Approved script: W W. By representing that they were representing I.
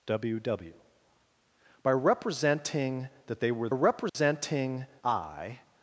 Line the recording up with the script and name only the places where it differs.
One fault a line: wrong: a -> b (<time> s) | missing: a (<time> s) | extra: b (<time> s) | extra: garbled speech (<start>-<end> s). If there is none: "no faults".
no faults